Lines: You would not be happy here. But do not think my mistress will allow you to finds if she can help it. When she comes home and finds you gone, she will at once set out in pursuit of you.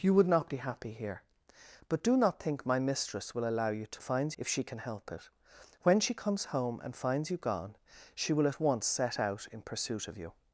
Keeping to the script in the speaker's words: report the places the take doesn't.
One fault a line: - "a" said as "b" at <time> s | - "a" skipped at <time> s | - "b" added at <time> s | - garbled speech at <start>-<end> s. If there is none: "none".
none